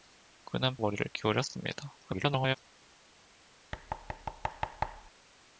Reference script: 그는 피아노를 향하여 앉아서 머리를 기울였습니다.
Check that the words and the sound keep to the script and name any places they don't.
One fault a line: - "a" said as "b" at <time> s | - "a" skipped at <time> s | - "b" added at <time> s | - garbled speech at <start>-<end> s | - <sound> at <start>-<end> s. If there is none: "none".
- "피아노를 향하여 앉아서" skipped at 0.8 s
- garbled speech at 2.0-2.6 s
- thud at 3.7-5.1 s